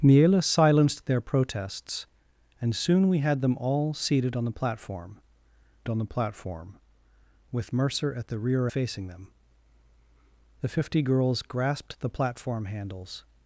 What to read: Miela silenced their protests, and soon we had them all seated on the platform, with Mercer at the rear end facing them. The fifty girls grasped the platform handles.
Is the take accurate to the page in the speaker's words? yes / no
no